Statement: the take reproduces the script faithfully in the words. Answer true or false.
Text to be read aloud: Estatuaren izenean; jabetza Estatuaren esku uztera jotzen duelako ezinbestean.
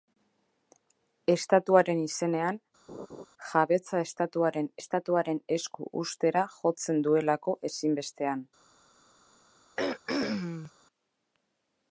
false